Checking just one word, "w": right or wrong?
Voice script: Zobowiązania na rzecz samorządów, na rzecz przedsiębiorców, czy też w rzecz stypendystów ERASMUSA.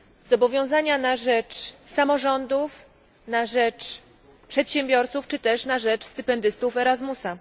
wrong